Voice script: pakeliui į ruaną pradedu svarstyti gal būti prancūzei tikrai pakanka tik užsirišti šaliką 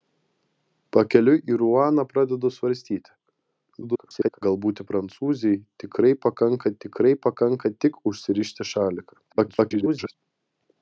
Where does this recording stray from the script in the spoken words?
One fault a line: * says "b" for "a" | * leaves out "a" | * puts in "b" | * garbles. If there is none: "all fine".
* garbles
* puts in "tikrai pakanka"
* garbles